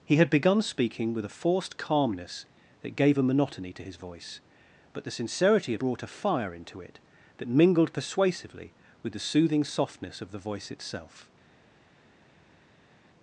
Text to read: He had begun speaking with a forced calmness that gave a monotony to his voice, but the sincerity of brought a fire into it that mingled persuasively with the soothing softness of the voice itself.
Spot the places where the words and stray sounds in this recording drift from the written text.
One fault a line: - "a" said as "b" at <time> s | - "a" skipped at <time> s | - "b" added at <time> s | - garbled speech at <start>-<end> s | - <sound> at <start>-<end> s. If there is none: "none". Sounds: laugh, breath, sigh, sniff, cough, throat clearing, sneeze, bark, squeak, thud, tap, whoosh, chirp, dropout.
none